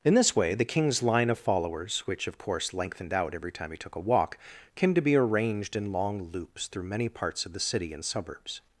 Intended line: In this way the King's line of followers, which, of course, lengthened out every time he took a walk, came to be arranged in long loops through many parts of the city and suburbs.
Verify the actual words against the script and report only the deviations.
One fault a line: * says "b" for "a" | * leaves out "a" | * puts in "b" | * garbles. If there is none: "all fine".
all fine